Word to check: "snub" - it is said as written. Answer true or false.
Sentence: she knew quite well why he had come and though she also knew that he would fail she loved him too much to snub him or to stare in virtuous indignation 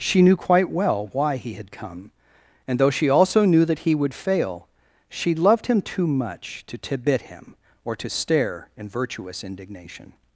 false